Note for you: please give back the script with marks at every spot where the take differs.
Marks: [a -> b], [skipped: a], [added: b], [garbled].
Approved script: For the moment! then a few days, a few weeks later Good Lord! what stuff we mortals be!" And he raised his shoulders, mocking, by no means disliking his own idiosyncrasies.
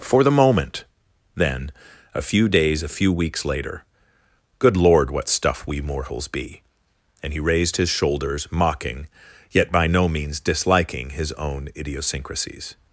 For the moment! then a few days, a few weeks later Good Lord! what stuff we mortals be!" And he raised his shoulders, mocking, [added: yet] by no means disliking his own idiosyncrasies.